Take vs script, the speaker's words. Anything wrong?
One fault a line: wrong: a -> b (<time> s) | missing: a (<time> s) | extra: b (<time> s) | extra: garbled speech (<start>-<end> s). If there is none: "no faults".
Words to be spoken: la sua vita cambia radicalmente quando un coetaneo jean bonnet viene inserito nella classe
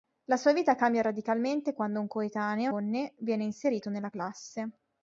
missing: jean (2.7 s)